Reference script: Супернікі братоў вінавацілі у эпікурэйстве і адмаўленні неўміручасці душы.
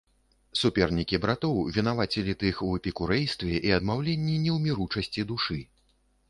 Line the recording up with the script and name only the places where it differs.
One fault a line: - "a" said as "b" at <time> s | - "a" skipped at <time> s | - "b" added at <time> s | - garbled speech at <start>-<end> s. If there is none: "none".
- "тых" added at 2.4 s